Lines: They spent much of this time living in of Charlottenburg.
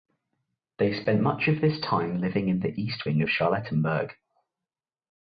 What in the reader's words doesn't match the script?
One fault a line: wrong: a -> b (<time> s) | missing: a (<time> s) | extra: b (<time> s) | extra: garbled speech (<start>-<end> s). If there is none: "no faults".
extra: the east wing (2.6 s)